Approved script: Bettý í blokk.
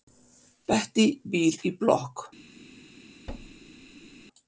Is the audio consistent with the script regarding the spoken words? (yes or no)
no